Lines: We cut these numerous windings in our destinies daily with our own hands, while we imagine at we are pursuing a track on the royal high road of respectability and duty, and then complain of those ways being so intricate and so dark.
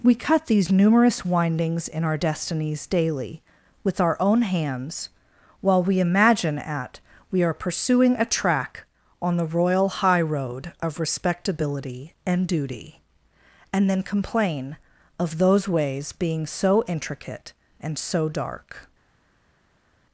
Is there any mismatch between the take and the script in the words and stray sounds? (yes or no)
no